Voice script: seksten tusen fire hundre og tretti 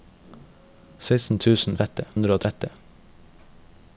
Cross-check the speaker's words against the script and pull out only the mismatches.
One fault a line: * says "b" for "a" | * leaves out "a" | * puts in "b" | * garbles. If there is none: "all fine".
* says "tretti" for "fire"